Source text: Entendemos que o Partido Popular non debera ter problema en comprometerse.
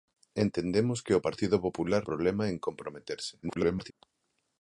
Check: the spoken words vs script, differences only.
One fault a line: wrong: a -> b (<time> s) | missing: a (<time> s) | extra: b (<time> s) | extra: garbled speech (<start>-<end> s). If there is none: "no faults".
missing: non debera ter (2.0 s)
extra: garbled speech (3.4-3.9 s)